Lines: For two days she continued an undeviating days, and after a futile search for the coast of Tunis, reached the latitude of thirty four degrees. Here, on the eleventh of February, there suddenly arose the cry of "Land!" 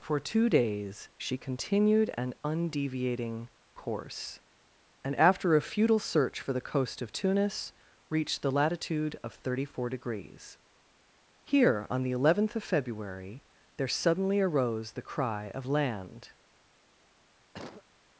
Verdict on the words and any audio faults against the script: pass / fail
fail